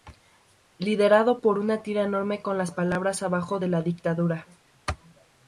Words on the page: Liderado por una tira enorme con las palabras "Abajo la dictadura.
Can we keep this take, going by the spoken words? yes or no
yes